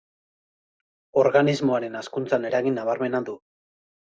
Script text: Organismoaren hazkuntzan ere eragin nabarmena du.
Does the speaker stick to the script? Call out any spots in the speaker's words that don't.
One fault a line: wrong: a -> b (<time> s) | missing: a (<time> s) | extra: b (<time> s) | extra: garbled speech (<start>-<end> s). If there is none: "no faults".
missing: ere (2.5 s)